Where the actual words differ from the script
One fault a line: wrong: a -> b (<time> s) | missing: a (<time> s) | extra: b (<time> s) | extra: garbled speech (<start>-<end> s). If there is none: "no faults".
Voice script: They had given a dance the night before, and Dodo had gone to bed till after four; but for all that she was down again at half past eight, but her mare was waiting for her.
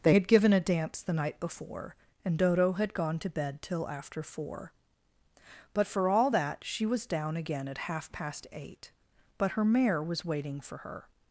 no faults